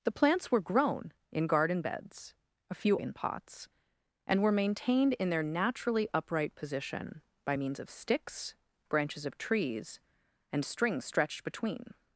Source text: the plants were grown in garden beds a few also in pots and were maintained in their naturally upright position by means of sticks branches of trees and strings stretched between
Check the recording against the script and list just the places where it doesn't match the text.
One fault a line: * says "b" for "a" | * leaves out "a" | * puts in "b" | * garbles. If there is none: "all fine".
* leaves out "also"